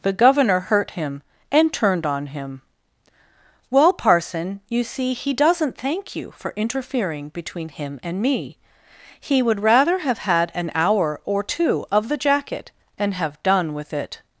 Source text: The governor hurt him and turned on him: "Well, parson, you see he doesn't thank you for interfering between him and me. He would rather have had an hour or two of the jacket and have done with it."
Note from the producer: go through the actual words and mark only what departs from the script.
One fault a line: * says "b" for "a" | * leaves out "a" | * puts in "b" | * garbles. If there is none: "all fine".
all fine